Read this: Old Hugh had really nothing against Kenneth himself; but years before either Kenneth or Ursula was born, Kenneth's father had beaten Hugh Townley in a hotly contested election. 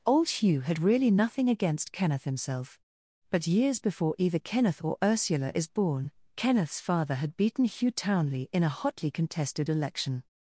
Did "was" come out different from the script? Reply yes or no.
yes